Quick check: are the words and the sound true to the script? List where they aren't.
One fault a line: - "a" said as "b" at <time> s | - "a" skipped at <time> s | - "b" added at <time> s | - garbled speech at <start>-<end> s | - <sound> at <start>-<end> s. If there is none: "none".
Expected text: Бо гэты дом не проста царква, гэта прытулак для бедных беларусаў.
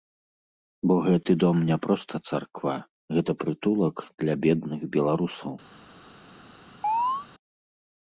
- chirp at 6.8-7.3 s